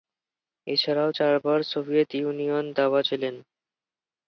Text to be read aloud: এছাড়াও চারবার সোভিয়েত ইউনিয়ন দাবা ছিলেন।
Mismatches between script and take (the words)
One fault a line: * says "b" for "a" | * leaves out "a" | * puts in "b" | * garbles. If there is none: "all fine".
all fine